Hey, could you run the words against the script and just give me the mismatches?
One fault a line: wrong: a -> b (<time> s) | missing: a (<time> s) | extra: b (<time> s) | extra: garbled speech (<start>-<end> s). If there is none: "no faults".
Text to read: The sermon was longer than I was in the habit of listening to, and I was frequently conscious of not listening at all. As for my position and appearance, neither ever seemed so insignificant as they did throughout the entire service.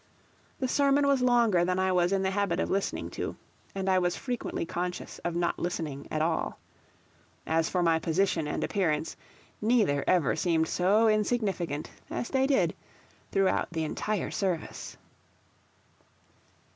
no faults